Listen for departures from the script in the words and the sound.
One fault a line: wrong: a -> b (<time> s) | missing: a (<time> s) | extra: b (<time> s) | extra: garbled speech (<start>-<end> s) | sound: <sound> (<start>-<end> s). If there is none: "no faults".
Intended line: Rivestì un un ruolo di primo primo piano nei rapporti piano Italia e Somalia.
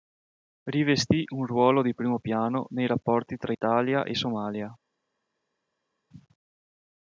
missing: un (1.4 s)
missing: primo (2.2 s)
wrong: piano -> tra (3.4 s)